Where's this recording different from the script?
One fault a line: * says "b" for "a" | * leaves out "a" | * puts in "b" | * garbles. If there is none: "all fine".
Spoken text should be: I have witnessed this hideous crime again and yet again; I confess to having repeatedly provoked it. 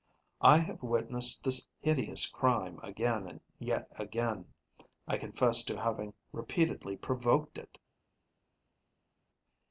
all fine